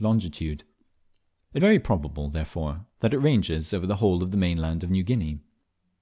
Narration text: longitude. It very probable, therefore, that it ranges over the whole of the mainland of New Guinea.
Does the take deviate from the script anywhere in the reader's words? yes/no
no